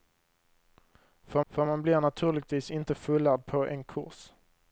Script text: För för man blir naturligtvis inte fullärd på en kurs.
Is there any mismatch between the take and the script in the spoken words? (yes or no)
no